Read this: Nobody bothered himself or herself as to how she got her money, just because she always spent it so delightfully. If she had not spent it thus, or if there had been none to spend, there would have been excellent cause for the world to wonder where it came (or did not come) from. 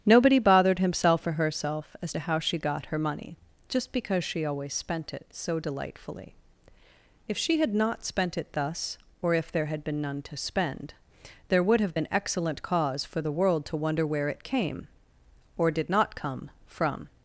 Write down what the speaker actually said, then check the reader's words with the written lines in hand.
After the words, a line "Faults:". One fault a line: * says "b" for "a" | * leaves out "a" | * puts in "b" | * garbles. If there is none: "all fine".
Nobody bothered himself or herself as to how she got her money, just because she always spent it so delightfully. If she had not spent it thus, or if there had been none to spend, there would have been excellent cause for the world to wonder where it came (or did not come) from.
Faults:
all fine